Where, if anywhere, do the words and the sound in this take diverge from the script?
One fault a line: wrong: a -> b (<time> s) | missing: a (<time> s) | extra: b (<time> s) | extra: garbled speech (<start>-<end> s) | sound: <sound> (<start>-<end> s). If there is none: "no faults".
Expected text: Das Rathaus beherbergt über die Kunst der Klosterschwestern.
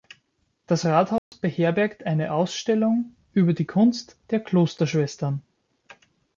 sound: dropout (1.2-1.3 s)
extra: eine Ausstellung (2.1 s)